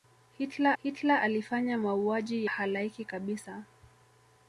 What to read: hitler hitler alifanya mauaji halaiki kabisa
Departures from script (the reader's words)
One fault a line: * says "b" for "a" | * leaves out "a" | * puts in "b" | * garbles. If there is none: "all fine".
all fine